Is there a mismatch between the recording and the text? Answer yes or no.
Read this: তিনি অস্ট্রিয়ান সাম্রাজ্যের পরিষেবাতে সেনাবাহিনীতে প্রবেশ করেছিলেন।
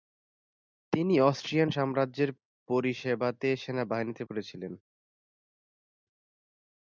yes